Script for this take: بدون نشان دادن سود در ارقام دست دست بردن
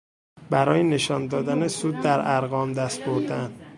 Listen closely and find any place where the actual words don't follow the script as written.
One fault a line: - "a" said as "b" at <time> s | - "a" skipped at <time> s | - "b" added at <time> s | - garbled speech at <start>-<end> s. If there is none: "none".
- "بدون" said as "برای" at 0.5 s
- "دست" skipped at 3.0 s